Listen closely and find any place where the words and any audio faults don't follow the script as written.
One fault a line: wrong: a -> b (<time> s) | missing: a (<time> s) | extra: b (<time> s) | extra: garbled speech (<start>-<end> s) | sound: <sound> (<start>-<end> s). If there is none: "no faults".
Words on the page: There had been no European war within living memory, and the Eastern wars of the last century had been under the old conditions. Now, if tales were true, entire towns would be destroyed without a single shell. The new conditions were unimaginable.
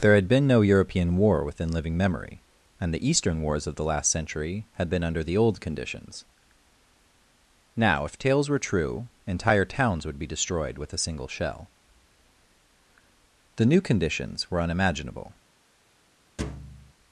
wrong: without -> with (10.8 s)
sound: thud (16.4-16.9 s)